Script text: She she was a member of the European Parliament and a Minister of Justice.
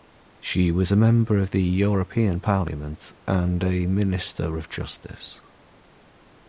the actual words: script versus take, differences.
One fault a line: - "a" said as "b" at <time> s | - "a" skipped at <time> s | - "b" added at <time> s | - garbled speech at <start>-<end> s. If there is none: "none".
- "she" skipped at 0.7 s